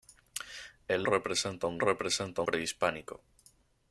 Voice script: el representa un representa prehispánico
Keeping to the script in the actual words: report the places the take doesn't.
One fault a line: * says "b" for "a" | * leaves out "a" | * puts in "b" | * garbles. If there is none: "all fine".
all fine